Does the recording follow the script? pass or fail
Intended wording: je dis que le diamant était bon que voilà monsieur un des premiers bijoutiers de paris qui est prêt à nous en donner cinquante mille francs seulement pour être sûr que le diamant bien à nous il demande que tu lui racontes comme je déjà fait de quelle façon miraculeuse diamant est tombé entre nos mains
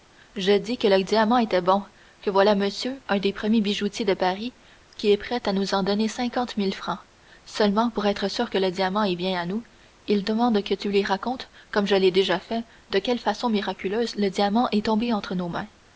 fail